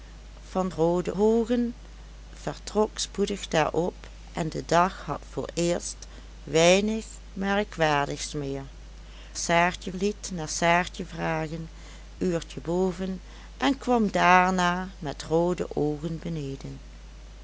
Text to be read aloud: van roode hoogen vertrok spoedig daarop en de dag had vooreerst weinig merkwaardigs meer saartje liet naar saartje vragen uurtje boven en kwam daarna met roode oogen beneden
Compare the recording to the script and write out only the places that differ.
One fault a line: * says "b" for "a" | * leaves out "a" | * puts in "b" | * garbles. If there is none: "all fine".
all fine